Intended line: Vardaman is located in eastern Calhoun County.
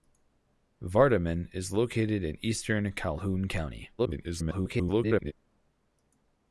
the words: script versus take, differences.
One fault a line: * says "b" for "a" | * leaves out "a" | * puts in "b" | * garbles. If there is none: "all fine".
* garbles